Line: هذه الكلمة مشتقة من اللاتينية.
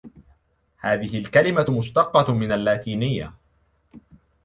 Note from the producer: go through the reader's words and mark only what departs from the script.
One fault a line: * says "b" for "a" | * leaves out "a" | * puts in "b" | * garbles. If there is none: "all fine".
all fine